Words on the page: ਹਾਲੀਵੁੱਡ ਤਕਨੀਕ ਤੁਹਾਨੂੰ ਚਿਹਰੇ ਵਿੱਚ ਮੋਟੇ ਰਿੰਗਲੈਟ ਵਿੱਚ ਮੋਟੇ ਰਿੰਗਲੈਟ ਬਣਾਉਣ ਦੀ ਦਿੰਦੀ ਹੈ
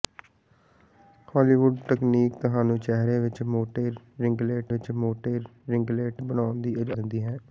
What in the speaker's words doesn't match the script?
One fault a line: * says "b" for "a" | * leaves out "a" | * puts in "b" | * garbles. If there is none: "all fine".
all fine